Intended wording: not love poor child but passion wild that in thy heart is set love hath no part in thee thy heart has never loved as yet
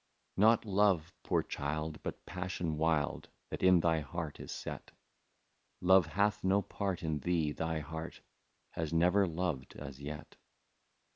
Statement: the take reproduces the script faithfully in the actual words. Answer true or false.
true